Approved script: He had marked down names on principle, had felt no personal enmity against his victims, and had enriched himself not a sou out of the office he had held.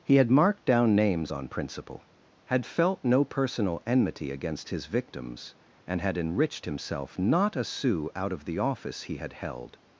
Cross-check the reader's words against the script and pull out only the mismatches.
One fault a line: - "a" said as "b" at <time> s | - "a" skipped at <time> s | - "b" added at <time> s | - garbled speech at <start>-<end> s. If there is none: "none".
none